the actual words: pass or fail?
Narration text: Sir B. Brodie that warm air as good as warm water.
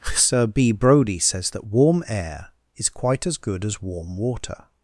fail